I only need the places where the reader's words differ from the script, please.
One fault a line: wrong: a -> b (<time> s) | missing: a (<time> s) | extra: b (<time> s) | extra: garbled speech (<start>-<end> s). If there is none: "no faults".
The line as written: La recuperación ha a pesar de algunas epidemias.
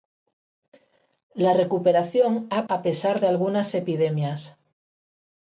no faults